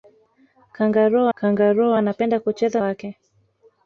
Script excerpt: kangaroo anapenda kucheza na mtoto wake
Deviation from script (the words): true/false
true